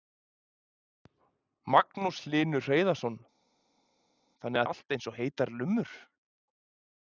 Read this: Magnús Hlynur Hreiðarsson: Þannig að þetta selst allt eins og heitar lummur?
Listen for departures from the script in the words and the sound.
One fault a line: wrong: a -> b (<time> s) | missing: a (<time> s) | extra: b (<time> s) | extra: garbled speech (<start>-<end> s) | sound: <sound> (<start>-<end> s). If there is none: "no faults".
missing: að þetta selst (4.6 s)